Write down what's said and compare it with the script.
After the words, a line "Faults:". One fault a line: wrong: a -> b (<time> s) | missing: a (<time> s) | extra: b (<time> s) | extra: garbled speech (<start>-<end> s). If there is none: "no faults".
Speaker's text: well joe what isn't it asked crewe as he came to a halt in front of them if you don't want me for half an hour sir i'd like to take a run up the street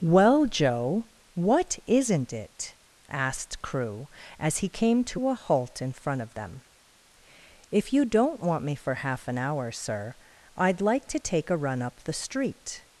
well joe what isn't it asked crewe as he came to a halt in front of them if you don't want me for half an hour sir i'd like to take a run up the street
Faults:
no faults